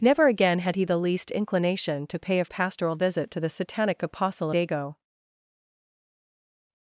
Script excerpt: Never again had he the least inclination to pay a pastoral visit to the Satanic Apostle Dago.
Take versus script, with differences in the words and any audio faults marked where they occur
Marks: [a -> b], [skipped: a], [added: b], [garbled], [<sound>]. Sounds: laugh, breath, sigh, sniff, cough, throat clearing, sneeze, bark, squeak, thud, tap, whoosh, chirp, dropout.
Never again had he the least inclination to pay a pastoral visit to the Satanic Apostle Dago.